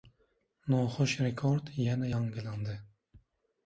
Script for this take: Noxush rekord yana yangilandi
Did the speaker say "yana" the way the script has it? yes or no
yes